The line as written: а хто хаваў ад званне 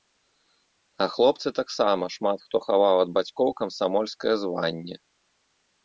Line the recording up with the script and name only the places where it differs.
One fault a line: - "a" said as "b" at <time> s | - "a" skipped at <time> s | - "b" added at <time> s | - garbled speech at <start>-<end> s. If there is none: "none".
- "хлопцы таксама шмат" added at 1.1 s
- "бацькоў камсамольскае" added at 3.2 s